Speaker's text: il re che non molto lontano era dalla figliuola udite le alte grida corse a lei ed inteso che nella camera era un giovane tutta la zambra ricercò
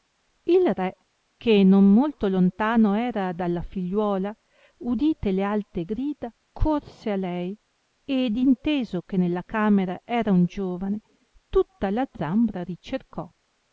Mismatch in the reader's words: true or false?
false